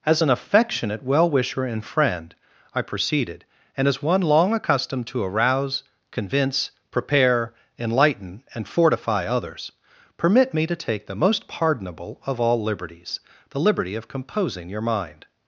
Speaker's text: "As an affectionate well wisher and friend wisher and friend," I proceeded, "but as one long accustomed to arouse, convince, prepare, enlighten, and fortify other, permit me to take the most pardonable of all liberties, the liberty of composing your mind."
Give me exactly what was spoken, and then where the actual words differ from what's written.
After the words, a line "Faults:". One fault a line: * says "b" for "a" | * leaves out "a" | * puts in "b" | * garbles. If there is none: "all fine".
"As an affectionate well wisher and friend," I proceeded, "and as one long accustomed to arouse, convince, prepare, enlighten, and fortify others, permit me to take the most pardonable of all liberties, the liberty of composing your mind."
Faults:
* leaves out "wisher and friend"
* says "and" for "but"
* says "others" for "other"